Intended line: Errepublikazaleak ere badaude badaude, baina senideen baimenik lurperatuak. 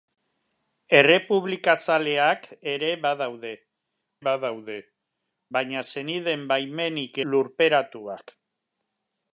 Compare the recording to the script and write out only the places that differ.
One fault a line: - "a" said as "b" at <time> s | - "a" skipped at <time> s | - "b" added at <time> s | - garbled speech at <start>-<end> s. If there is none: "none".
none